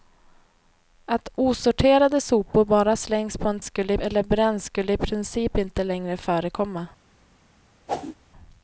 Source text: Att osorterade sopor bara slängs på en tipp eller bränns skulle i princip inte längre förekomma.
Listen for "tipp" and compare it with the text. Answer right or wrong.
wrong